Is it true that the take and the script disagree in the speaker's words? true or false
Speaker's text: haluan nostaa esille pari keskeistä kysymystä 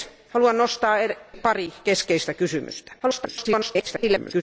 true